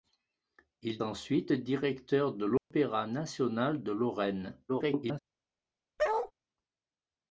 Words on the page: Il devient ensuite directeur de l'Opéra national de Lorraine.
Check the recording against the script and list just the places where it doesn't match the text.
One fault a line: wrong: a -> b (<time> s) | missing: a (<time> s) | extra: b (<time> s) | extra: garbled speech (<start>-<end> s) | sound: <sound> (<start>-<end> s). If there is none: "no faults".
missing: devient (1.0 s)
sound: dropout (2.6-2.7 s)
extra: garbled speech (4.7-5.2 s)
sound: bark (6.0-6.3 s)